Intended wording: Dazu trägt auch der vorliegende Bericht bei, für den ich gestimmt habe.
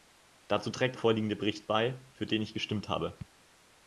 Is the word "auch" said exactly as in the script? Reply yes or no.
no